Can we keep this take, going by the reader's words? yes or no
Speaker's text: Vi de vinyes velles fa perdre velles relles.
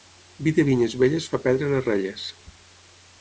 no